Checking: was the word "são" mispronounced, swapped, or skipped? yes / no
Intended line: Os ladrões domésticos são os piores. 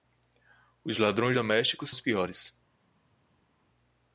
yes